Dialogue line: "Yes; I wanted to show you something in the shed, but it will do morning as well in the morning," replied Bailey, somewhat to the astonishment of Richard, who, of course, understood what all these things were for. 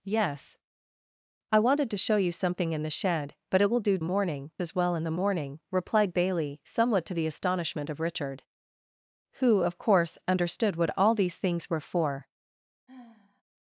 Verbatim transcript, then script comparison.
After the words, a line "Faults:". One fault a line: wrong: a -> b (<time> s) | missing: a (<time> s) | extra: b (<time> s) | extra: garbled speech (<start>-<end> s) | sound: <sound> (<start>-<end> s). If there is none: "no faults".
"Yes; I wanted to show you something in the shed, but it will do morning as well in the morning," replied Bailey, somewhat to the astonishment of Richard, who, of course, understood what all these things were for.
Faults:
sound: sigh (12.9-13.4 s)